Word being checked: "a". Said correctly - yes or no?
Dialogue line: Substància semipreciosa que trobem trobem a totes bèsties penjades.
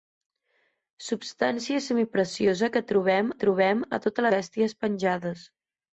yes